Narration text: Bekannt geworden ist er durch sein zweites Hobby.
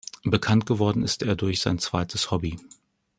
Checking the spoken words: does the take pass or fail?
pass